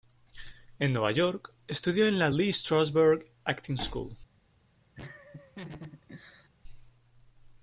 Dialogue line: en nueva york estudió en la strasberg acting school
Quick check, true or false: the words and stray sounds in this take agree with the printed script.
false